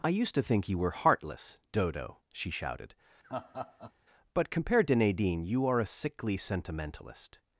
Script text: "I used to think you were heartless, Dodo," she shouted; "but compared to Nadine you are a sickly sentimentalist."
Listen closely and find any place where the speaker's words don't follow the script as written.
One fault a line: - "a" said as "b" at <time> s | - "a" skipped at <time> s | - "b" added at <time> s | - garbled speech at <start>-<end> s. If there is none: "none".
none